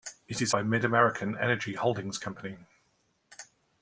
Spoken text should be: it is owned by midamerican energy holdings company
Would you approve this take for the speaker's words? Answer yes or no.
no